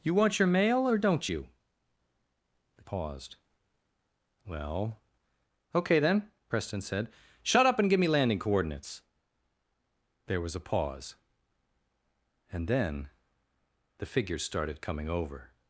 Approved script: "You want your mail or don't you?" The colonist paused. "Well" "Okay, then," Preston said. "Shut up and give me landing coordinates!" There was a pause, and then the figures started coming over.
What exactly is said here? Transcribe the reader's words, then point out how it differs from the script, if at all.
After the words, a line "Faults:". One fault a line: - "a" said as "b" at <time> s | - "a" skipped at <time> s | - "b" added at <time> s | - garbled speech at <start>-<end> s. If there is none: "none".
"You want your mail or don't you?" The paused. "Well" "Okay, then," Preston said. "Shut up and give me landing coordinates!" There was a pause, and then the figures started coming over.
Faults:
- "colonist" skipped at 2.8 s